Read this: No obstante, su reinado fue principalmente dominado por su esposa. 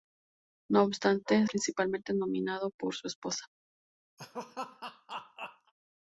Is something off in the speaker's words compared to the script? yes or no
yes